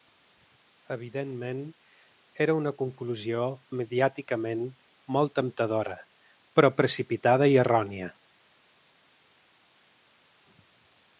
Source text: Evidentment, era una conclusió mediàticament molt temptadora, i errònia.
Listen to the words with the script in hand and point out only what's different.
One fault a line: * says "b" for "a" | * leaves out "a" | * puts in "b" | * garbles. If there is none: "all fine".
* puts in "però precipitada"